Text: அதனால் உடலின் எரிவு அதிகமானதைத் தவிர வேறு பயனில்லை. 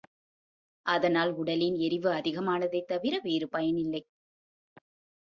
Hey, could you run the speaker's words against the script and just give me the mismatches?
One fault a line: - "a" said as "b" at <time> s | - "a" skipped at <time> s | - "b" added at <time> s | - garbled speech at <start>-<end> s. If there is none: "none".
none